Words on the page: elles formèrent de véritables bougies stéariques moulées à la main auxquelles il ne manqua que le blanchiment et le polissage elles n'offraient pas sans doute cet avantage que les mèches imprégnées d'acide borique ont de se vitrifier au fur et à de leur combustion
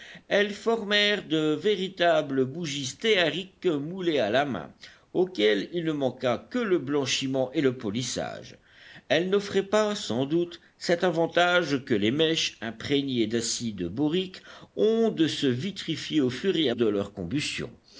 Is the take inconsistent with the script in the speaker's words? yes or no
no